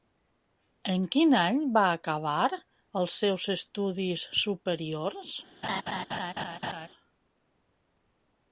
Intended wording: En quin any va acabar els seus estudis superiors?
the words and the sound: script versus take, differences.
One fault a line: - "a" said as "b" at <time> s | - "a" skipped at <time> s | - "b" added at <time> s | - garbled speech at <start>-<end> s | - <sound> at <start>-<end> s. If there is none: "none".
- laugh at 5.6-6.9 s